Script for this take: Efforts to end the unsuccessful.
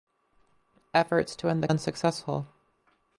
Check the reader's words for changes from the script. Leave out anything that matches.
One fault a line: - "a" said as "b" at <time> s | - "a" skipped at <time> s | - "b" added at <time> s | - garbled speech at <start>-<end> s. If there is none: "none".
none